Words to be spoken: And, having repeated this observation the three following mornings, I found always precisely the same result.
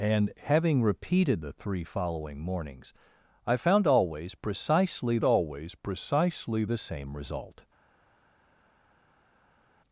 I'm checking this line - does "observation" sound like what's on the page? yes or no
no